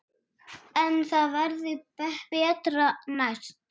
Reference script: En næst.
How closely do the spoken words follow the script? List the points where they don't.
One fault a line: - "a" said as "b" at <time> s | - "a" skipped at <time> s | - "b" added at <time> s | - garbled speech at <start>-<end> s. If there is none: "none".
- "það verður betra" added at 1.1 s